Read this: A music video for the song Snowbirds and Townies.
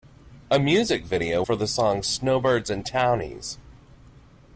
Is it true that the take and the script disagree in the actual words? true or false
false